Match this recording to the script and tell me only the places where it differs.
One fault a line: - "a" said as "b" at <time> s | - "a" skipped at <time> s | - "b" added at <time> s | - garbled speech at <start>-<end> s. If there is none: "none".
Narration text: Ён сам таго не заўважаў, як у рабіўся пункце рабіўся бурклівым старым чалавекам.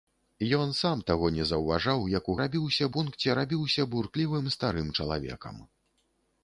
none